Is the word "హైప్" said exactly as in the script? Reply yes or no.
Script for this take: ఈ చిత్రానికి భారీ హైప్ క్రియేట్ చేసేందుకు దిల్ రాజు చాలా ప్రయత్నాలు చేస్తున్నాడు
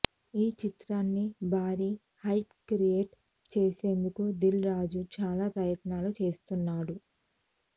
yes